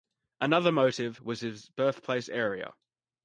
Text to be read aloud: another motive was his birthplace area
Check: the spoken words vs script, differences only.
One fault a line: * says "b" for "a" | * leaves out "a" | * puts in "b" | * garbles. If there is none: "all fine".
all fine